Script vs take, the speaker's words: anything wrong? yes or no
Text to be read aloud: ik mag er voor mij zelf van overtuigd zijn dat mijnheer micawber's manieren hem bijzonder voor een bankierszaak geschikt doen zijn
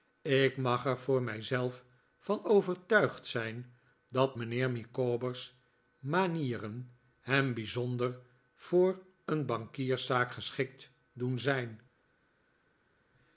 no